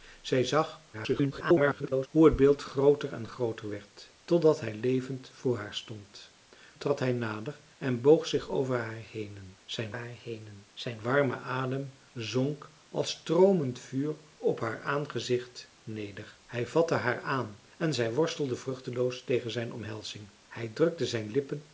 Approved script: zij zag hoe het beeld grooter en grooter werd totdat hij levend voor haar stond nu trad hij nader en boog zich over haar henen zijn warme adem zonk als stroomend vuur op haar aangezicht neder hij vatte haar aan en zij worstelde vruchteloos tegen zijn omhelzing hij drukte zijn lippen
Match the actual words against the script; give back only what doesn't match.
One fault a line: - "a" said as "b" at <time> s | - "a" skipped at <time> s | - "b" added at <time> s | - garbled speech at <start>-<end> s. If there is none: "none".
- garbled speech at 0.9-2.1 s
- "nu" skipped at 6.3 s
- "haar henen zijn" added at 9.9 s